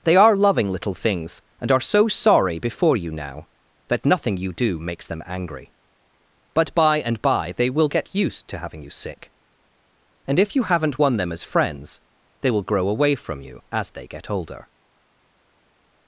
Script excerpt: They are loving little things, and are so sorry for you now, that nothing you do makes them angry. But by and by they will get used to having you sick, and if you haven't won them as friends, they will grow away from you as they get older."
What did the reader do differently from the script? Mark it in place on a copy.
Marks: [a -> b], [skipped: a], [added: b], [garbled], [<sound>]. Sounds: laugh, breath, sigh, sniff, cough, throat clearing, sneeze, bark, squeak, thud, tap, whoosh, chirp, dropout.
They are loving little things, and are so sorry [for -> before] you now, that nothing you do makes them angry. But by and by they will get used to having you sick, and if you haven't won them as friends, they will grow away from you as they get older."